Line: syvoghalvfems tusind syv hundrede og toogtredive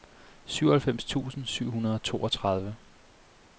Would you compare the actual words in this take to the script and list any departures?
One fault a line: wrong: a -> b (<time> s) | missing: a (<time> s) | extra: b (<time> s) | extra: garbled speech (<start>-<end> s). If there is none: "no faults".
no faults